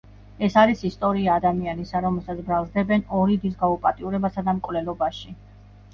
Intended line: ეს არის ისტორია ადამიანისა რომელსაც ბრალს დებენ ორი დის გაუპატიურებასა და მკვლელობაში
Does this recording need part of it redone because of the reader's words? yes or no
no